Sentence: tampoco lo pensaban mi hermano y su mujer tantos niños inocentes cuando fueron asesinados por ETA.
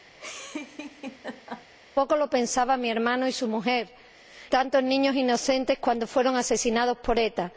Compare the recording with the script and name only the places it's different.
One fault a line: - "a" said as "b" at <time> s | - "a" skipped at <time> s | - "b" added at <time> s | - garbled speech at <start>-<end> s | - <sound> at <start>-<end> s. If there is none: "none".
- laugh at 0.2-1.7 s